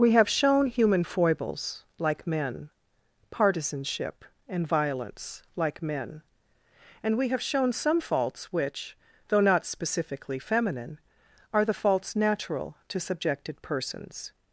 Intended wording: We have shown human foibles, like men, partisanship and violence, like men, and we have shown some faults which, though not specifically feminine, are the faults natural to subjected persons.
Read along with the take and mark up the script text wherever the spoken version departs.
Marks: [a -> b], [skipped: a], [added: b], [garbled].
We have shown human foibles, like men, partisanship and violence, like men, and we have shown some faults which, though not specifically feminine, are the faults natural to subjected persons.